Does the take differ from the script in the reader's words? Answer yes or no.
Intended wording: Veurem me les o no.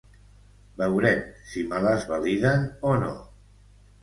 yes